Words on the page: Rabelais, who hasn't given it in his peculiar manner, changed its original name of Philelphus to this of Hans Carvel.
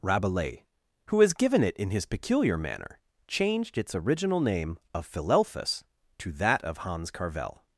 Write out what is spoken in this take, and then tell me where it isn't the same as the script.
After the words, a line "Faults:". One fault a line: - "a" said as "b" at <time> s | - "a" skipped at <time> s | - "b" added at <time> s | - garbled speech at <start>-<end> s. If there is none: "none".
Rabelais, who has given it in his peculiar manner, changed its original name of Philelphus to that of Hans Carvel.
Faults:
- "hasn't" said as "has" at 1.2 s
- "this" said as "that" at 6.3 s